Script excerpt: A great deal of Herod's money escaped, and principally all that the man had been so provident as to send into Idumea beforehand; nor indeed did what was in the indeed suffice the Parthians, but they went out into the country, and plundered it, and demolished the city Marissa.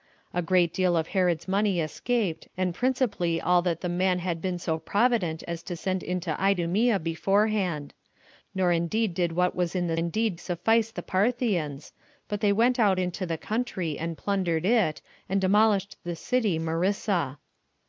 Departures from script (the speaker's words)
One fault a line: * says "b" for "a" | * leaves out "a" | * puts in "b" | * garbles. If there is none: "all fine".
all fine